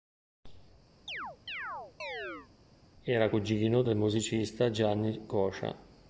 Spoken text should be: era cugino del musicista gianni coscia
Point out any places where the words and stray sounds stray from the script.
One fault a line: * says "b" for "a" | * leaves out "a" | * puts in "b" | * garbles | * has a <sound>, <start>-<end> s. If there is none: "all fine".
* has a chirp, 1.1-2.5 s